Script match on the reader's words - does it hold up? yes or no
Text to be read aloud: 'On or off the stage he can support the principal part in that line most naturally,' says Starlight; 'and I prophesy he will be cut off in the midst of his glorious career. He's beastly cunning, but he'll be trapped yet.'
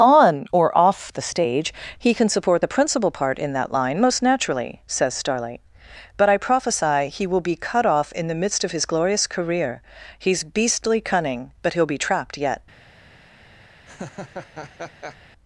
no